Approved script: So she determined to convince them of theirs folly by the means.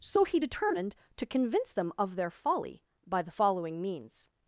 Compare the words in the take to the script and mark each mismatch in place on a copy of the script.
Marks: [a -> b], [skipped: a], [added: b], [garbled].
So [she -> he] determined to convince them of [theirs -> their] folly by the [added: following] means.